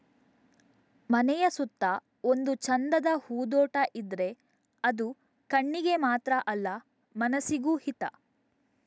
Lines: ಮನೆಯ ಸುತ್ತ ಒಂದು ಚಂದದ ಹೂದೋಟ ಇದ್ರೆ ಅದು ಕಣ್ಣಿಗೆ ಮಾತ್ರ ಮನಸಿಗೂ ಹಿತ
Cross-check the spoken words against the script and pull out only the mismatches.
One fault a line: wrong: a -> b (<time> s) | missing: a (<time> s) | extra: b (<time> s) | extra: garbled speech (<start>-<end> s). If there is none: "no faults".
extra: ಅಲ್ಲ (6.5 s)